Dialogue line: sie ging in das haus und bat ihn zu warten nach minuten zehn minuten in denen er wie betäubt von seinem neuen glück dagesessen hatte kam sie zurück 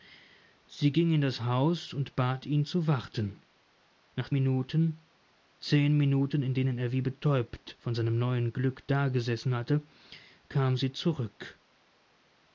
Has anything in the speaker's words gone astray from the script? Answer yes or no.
no